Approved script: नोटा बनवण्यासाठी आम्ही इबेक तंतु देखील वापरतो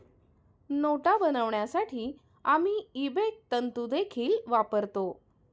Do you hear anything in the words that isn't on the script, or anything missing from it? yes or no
no